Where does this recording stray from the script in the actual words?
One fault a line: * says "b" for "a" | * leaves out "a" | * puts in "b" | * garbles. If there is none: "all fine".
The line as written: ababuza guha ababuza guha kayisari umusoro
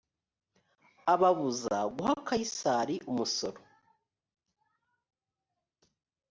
* leaves out "ababuza guha"